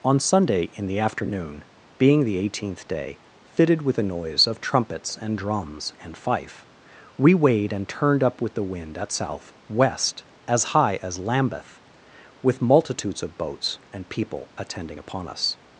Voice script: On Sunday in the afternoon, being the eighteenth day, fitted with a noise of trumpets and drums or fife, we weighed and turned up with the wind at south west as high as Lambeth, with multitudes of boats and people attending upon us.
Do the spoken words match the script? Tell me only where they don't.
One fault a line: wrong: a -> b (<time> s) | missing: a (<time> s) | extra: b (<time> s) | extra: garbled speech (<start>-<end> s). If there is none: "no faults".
wrong: or -> and (6.0 s)